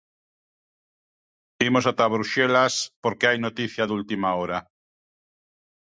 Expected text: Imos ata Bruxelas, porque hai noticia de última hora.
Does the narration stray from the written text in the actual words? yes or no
no